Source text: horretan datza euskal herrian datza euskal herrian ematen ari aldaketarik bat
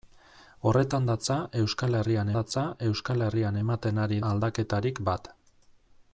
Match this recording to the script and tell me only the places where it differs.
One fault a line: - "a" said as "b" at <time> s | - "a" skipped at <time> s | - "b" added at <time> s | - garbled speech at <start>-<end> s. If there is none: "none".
none